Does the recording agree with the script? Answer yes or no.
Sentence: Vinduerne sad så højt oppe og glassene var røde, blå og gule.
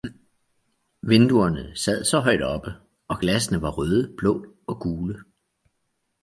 yes